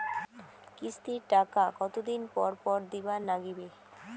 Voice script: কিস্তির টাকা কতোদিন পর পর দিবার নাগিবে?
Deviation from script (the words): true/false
false